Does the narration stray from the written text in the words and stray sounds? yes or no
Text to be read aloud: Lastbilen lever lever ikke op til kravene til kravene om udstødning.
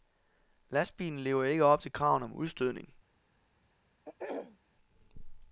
yes